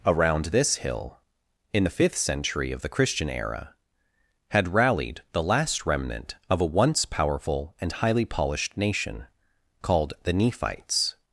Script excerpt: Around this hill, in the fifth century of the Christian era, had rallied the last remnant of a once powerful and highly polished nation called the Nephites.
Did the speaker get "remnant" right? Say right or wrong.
right